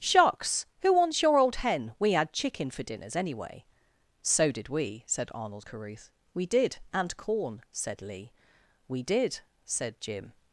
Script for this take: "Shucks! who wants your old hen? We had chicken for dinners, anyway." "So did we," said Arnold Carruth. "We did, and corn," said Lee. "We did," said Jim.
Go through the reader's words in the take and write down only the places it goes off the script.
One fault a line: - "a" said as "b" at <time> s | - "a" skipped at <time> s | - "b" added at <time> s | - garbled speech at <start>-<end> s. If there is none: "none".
none